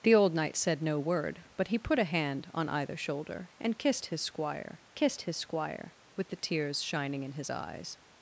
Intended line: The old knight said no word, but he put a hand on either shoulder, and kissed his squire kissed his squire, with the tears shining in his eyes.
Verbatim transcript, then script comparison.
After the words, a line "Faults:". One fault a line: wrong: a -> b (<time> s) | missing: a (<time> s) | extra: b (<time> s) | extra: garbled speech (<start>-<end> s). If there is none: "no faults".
The old knight said no word, but he put a hand on either shoulder, and kissed his squire kissed his squire, with the tears shining in his eyes.
Faults:
no faults